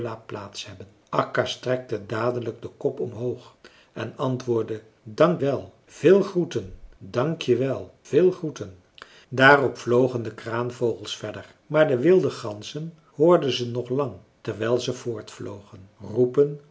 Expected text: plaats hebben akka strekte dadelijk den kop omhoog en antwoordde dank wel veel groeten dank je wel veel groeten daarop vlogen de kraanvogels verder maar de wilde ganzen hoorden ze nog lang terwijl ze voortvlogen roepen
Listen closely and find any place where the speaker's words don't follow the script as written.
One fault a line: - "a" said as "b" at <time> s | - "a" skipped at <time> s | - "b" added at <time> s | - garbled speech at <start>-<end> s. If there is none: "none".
none